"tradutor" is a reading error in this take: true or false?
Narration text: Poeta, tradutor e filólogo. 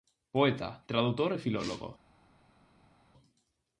false